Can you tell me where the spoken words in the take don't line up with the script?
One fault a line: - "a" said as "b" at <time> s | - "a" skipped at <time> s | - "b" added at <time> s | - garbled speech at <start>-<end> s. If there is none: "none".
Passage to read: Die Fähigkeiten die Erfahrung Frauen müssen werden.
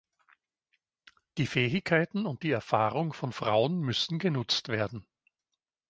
- "und" added at 2.2 s
- "von" added at 3.1 s
- "genutzt" added at 4.2 s